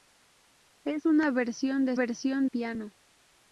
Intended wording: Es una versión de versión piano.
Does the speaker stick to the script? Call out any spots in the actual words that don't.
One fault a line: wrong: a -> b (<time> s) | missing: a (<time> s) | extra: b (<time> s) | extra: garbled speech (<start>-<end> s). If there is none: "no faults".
no faults